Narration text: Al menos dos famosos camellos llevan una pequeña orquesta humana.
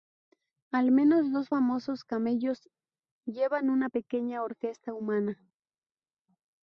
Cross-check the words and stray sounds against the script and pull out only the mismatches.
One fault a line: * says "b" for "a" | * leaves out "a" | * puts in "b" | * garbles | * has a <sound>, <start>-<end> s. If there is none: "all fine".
all fine